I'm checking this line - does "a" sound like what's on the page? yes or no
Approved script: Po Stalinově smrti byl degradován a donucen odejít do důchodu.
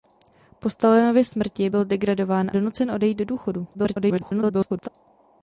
no